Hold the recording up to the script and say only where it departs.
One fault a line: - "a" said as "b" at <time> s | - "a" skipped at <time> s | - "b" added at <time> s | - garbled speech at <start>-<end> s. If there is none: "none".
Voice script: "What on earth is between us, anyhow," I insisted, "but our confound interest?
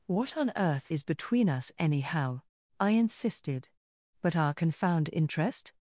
none